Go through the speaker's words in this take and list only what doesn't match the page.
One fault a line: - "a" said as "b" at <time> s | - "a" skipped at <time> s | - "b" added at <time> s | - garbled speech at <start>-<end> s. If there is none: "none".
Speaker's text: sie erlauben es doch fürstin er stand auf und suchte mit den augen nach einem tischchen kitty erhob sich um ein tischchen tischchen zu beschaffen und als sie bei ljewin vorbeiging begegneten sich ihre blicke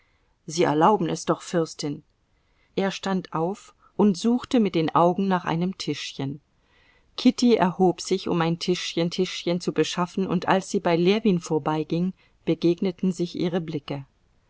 none